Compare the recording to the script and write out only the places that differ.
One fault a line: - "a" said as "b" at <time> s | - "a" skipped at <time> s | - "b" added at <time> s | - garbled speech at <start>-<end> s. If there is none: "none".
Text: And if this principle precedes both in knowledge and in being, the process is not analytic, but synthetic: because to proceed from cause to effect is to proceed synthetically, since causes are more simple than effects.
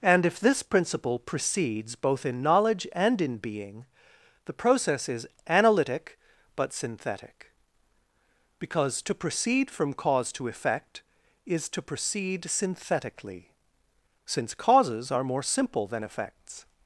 - "not" skipped at 5.3 s